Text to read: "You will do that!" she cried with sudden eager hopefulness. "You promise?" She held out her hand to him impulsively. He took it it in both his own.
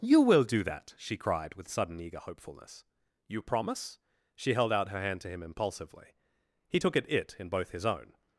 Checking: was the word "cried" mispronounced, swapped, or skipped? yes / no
no